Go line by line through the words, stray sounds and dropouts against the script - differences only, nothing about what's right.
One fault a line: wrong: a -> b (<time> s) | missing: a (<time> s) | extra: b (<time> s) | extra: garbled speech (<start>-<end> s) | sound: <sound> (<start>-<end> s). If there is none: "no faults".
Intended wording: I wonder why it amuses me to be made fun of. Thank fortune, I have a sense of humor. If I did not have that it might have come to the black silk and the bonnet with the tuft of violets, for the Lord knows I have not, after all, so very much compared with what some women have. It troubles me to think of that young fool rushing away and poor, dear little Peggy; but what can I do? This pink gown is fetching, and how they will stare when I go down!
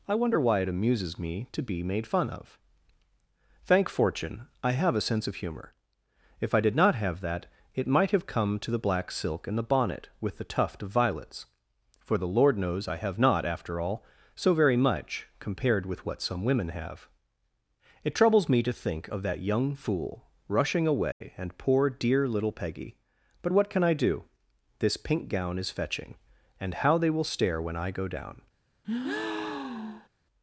sound: dropout (21.1-21.2 s)
sound: breath (28.8-30.1 s)